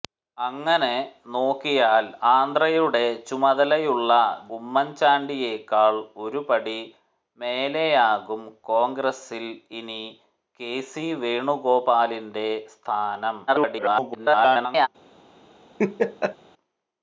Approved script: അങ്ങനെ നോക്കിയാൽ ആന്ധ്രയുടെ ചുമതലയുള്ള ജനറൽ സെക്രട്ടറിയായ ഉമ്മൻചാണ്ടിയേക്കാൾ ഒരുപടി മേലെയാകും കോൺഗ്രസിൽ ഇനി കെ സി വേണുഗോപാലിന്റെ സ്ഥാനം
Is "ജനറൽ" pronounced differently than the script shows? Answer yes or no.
yes